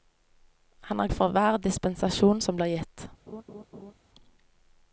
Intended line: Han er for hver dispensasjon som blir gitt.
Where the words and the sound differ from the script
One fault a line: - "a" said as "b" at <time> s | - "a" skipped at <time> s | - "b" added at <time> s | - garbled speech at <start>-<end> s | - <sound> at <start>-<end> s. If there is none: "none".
- laugh at 3.3-3.9 s